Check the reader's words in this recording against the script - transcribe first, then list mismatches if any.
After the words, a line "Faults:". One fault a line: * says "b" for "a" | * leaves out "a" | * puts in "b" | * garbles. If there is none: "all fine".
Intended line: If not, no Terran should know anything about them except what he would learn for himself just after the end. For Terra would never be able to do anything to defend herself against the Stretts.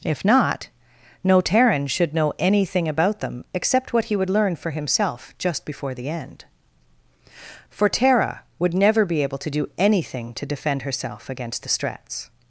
If not, no Terran should know anything about them except what he would learn for himself just before the end. For Terra would never be able to do anything to defend herself against the Stretts.
Faults:
* says "before" for "after"